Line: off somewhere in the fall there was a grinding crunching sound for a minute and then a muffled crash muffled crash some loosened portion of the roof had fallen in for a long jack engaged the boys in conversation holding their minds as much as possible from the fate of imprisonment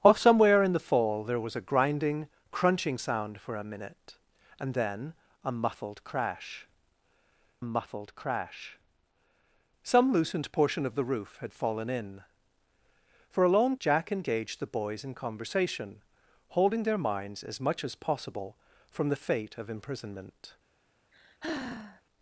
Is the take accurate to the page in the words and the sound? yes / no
no